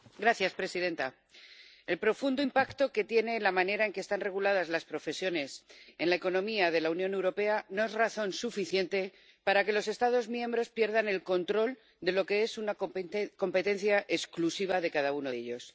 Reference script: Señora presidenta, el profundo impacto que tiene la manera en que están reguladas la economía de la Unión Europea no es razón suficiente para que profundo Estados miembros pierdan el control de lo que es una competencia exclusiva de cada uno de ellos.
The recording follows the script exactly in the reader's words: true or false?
false